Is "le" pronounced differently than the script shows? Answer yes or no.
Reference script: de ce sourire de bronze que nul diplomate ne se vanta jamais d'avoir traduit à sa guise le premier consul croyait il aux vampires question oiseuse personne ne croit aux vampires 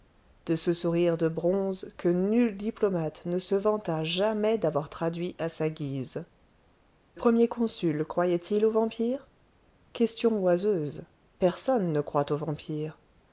yes